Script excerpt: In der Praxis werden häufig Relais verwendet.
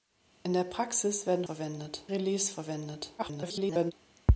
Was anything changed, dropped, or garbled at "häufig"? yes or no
yes